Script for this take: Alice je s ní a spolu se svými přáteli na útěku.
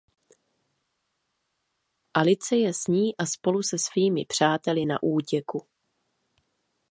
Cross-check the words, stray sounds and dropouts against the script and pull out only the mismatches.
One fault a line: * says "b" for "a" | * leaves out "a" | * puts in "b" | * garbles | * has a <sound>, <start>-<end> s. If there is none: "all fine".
all fine